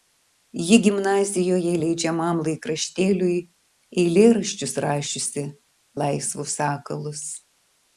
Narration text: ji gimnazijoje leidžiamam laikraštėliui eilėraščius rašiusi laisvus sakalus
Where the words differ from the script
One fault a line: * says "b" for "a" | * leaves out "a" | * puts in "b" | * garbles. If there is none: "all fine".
all fine